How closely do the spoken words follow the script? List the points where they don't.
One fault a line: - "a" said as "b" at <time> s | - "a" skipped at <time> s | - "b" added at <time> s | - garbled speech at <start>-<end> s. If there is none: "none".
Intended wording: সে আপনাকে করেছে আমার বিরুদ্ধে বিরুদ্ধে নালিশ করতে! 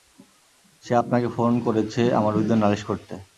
- "ফোন" added at 1.4 s
- "বিরুদ্ধে" skipped at 2.6 s